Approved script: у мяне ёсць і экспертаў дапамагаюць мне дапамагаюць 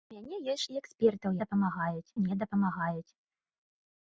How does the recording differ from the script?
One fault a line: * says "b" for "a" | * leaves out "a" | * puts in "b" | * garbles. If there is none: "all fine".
all fine